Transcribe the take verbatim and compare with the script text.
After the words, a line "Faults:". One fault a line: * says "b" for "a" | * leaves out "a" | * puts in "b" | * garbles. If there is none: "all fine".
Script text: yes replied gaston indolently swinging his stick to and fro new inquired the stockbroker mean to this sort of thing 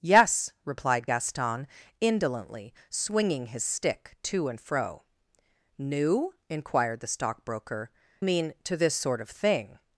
yes replied gaston indolently swinging his stick to and fro new inquired the stockbroker mean to this sort of thing
Faults:
all fine